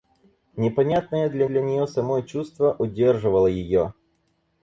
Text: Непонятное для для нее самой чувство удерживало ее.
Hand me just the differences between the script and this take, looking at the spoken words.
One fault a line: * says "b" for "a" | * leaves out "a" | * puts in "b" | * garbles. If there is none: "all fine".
all fine